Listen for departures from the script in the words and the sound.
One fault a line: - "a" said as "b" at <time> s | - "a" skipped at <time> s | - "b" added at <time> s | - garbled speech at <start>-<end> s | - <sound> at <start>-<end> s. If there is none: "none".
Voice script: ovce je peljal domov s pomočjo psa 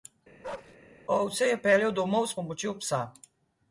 - bark at 0.4-0.8 s